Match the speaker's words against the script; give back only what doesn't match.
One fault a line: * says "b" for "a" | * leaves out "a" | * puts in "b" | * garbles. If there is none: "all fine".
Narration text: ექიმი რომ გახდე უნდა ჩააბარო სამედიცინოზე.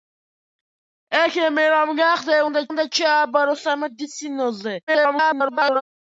* puts in "უნდა"
* garbles